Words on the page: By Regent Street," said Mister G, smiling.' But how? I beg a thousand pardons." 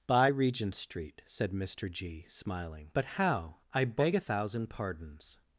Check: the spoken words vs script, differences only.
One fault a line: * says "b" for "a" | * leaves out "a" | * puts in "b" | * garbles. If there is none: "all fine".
all fine